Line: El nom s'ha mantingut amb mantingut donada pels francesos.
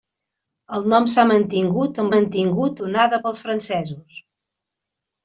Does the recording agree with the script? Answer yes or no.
yes